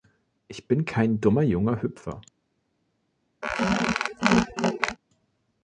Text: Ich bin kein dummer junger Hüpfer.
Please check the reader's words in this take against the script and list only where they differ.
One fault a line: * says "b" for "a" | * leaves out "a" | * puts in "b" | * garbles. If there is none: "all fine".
all fine